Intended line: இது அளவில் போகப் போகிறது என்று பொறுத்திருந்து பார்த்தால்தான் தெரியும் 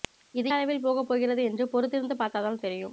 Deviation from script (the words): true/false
false